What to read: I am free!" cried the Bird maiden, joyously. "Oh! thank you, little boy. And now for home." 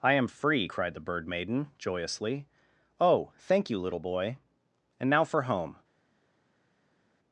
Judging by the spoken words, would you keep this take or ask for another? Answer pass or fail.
pass